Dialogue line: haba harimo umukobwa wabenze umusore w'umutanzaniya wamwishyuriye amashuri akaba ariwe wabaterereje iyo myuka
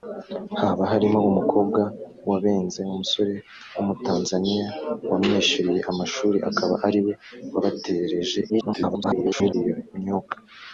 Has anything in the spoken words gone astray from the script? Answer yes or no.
yes